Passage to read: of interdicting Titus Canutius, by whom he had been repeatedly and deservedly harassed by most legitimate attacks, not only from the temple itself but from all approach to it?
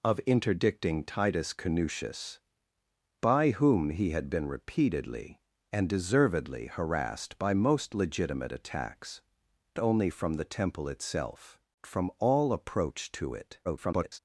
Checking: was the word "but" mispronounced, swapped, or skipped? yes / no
yes